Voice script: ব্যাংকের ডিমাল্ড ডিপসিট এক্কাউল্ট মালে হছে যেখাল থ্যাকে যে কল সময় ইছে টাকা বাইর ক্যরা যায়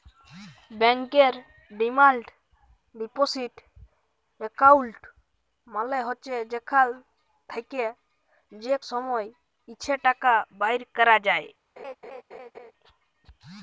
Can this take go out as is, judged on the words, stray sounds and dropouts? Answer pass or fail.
fail